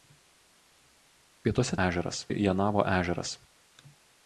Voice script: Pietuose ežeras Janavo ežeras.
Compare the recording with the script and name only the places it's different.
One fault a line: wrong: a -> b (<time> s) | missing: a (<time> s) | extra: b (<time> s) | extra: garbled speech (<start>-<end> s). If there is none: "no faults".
no faults